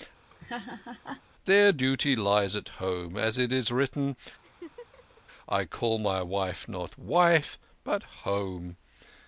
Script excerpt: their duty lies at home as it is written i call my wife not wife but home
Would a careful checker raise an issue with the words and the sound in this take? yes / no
yes